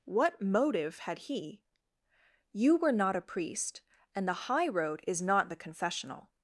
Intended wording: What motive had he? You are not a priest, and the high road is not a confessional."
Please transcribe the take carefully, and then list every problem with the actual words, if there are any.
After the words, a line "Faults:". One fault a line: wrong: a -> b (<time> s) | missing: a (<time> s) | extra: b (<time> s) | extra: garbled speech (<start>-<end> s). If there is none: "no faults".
What motive had he? You were not a priest, and the high road is not the confessional."
Faults:
wrong: are -> were (2.8 s)
wrong: a -> the (5.5 s)